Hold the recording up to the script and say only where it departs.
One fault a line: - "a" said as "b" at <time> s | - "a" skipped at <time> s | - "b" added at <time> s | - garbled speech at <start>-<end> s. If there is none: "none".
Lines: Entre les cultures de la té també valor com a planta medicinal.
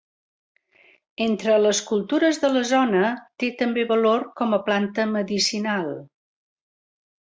- "zona" added at 2.7 s